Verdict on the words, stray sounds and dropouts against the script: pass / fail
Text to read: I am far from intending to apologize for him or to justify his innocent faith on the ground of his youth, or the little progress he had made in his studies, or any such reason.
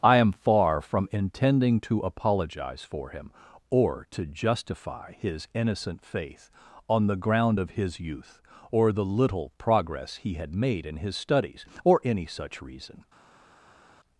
pass